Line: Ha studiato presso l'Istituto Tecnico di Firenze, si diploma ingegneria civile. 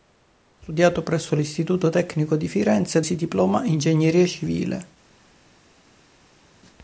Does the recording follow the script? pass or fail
pass